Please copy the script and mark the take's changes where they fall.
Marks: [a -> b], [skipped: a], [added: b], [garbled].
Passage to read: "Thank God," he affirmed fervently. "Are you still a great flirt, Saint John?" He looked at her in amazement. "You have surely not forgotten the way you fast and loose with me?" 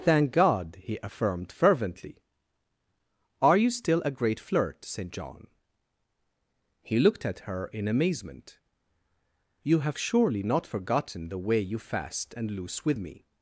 "Thank God," he affirmed fervently. "Are you still a great flirt, Saint John?" He looked at her in amazement. "You have surely not forgotten the way you fast and loose with me?"